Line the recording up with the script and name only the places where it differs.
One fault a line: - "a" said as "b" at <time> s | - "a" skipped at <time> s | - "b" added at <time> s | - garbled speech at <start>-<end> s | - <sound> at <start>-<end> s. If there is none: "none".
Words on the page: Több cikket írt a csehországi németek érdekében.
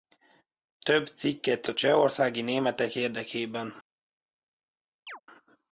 - "írt" skipped at 1.7 s
- chirp at 5.1-5.2 s